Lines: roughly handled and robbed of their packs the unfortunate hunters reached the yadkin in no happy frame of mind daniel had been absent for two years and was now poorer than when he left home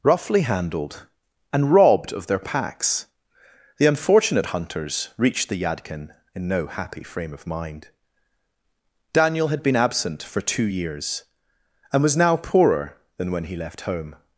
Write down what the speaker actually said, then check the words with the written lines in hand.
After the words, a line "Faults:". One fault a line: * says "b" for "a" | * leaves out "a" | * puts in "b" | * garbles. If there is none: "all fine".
roughly handled and robbed of their packs the unfortunate hunters reached the yadkin in no happy frame of mind daniel had been absent for two years and was now poorer than when he left home
Faults:
all fine